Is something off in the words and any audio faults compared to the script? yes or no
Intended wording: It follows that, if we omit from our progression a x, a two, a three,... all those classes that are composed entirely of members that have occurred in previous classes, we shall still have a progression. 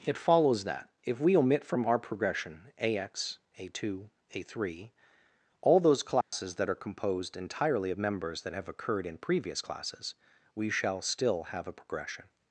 yes